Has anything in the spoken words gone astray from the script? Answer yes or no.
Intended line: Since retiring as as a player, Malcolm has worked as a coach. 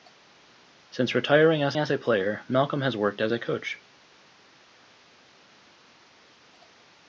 no